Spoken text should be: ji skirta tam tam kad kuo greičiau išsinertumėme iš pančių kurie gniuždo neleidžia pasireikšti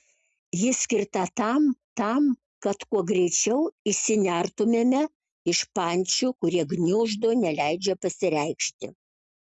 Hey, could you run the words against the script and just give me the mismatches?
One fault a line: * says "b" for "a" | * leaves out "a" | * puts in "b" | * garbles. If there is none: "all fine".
all fine